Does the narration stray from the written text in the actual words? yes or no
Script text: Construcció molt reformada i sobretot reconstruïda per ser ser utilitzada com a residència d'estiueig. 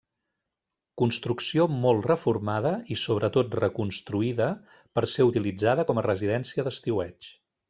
yes